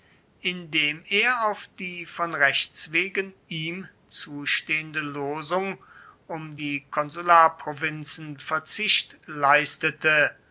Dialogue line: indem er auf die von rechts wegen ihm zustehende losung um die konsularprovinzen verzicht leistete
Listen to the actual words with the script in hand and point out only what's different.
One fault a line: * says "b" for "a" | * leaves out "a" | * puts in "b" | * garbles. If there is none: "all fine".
all fine